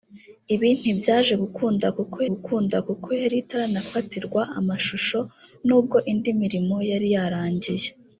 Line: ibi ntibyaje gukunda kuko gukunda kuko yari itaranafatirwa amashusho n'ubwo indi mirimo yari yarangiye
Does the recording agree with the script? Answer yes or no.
yes